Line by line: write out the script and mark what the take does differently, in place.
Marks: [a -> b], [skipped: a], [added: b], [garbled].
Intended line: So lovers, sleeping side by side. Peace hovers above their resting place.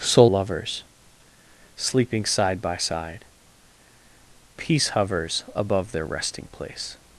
So lovers, sleeping side by side. Peace hovers above their resting place.